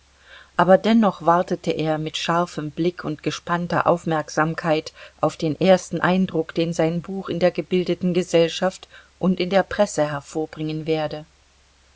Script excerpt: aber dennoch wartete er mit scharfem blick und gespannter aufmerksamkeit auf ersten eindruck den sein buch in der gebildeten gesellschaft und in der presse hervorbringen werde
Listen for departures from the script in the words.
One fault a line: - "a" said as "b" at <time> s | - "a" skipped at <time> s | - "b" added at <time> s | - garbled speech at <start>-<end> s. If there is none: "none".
- "den" added at 5.4 s